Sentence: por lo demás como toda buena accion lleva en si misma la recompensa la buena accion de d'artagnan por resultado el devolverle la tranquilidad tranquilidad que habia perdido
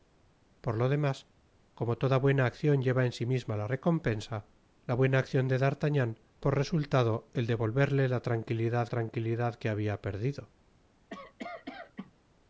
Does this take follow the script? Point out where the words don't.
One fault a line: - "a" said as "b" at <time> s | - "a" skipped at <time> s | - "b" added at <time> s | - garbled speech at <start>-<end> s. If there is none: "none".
none